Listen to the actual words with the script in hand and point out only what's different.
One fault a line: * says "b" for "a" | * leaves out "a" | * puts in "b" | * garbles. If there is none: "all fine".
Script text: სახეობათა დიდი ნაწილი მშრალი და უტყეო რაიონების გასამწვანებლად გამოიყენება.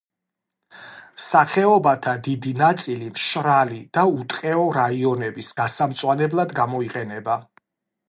all fine